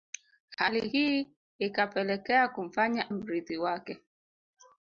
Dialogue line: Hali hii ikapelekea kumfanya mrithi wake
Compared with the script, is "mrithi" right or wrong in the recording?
right